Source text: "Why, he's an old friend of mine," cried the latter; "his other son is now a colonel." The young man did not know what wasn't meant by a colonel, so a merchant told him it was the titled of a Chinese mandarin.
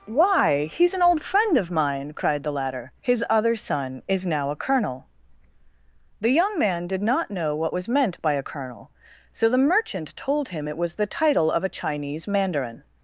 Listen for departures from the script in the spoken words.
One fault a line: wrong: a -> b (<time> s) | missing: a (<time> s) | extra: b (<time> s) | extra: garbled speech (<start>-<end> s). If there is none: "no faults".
wrong: wasn't -> was (7.7 s)
wrong: a -> the (9.5 s)
wrong: titled -> title (11.1 s)